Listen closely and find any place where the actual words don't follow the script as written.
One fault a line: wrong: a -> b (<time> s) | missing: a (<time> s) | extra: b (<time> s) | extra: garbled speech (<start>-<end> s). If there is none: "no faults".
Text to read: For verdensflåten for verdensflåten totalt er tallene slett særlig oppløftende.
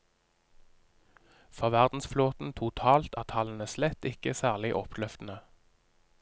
missing: for verdensflåten (2.5 s)
extra: ikke (4.1 s)